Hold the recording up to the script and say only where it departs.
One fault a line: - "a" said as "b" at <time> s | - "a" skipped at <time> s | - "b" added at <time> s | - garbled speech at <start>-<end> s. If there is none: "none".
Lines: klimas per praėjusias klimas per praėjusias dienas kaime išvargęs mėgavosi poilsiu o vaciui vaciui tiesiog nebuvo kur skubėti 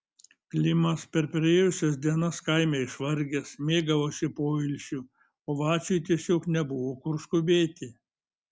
- "klimas per praėjusias" skipped at 2.0 s
- "vaciui" skipped at 6.0 s